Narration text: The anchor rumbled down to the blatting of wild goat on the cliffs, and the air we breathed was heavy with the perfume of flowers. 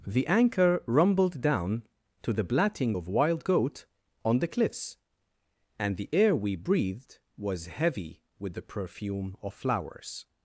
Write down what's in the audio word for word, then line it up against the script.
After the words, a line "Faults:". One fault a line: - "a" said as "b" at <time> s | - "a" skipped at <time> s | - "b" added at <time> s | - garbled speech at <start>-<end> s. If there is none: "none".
The anchor rumbled down to the blatting of wild goat on the cliffs, and the air we breathed was heavy with the perfume of flowers.
Faults:
none